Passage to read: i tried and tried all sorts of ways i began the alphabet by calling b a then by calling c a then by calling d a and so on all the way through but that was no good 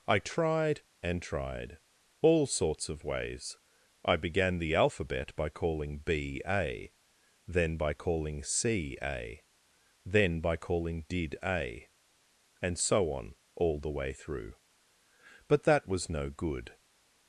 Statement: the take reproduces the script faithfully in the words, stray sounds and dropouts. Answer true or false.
false